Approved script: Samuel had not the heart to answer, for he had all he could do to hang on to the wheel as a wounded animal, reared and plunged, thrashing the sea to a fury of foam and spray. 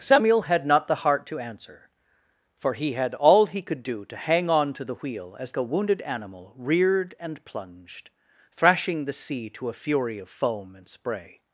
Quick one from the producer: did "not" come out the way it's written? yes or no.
yes